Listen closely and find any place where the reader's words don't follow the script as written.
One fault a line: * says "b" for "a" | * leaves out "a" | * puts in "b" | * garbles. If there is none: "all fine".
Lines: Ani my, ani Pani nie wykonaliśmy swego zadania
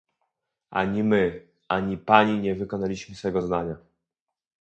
all fine